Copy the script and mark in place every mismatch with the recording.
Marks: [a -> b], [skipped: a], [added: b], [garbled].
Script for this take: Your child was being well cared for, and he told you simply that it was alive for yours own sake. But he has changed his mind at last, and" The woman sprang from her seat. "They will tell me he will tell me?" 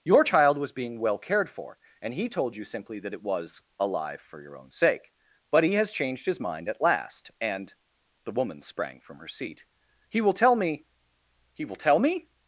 Your child was being well cared for, and he told you simply that it was alive for [yours -> your] own sake. But he has changed his mind at last, and" The woman sprang from her seat. ["They -> He] will tell me he will tell me?"